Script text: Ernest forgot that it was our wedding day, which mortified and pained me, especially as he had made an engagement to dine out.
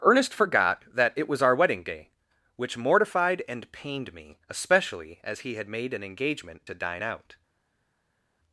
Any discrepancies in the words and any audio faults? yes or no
no